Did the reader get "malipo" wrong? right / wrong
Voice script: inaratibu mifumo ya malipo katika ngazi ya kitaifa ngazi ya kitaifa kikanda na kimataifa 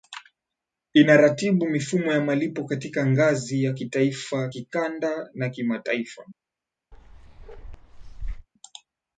right